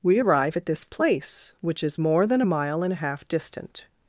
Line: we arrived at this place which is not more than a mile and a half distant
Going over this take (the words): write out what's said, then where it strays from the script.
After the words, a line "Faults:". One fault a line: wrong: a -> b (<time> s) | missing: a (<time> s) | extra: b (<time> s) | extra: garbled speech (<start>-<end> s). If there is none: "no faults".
we arrive at this place which is more than a mile and a half distant
Faults:
wrong: arrived -> arrive (0.2 s)
missing: not (2.0 s)